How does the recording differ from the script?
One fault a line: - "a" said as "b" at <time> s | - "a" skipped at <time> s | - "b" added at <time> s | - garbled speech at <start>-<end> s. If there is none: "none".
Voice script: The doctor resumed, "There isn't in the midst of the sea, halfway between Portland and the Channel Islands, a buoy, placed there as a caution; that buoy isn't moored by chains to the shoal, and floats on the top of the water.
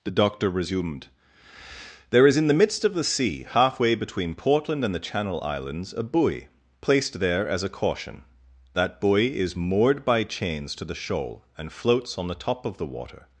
- "isn't" said as "is" at 2.2 s
- "isn't" said as "is" at 9.4 s